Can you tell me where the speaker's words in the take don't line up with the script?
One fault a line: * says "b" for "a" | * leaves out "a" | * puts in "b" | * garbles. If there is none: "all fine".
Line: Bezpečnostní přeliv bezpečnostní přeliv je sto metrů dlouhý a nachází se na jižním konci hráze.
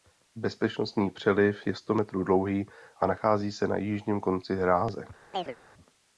* leaves out "bezpečnostní přeliv"